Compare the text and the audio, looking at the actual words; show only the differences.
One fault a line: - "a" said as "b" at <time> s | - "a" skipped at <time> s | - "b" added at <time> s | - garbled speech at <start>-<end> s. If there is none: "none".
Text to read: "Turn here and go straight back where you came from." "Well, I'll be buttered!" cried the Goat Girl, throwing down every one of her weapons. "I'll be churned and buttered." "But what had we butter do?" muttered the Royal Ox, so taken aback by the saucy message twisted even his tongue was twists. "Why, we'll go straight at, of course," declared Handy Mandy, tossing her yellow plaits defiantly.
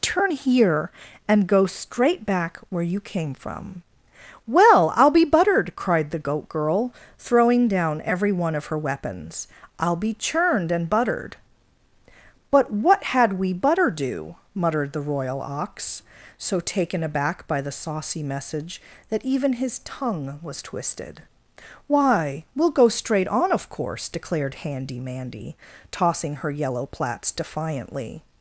- "twisted" said as "that" at 19.1 s
- "twists" said as "twisted" at 20.6 s
- "at" said as "on" at 23.3 s